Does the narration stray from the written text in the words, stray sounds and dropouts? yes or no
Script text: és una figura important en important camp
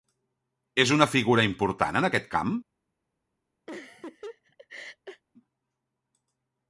yes